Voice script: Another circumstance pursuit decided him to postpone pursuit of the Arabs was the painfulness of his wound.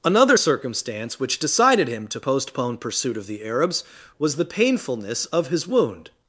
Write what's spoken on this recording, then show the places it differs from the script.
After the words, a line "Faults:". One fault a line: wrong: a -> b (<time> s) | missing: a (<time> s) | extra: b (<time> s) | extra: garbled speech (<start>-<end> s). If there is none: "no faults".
Another circumstance which decided him to postpone pursuit of the Arabs was the painfulness of his wound.
Faults:
wrong: pursuit -> which (1.2 s)